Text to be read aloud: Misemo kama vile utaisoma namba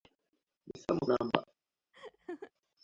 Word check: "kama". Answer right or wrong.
wrong